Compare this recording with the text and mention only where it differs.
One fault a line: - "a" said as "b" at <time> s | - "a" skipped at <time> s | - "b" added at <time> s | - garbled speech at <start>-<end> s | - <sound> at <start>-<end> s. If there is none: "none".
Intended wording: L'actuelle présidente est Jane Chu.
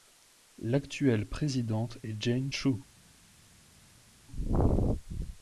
none